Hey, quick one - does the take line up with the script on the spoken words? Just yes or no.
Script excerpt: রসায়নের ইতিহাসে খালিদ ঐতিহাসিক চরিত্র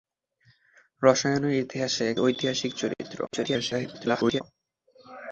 no